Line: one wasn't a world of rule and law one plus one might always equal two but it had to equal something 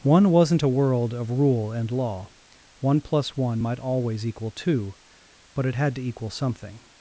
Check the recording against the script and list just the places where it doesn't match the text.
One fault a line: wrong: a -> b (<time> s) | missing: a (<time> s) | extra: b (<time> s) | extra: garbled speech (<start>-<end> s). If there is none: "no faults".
no faults